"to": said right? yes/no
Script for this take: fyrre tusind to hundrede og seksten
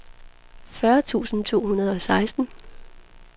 yes